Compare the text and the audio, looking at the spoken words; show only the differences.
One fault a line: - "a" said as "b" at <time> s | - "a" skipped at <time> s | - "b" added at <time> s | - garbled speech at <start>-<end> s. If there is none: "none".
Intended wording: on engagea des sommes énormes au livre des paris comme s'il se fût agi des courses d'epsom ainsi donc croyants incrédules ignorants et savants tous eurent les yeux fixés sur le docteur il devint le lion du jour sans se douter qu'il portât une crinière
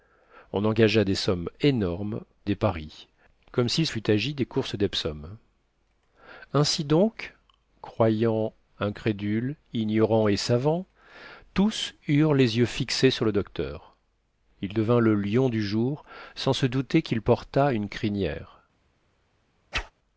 - "au livre" skipped at 2.2 s
- "se" skipped at 3.9 s